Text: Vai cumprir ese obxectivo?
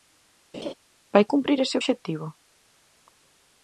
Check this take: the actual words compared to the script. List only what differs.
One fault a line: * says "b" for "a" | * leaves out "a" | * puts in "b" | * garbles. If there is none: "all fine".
all fine